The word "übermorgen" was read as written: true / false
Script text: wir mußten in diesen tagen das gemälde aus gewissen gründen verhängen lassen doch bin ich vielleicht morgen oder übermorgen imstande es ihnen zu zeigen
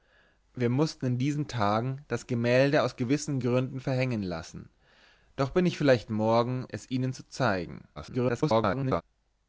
false